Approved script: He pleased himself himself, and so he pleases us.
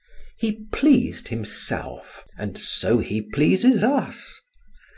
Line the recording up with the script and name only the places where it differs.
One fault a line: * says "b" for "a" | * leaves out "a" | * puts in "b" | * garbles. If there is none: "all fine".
* leaves out "himself"